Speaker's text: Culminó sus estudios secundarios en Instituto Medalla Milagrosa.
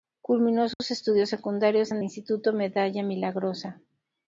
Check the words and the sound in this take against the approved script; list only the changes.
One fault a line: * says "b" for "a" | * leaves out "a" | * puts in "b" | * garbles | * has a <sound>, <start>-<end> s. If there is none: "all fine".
* has a dropout, 0.7-0.8 s